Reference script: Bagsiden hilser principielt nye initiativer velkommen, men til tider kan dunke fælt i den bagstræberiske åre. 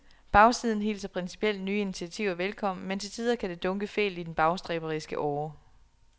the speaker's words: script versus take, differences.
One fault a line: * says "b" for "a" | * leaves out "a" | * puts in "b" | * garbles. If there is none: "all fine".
* puts in "det"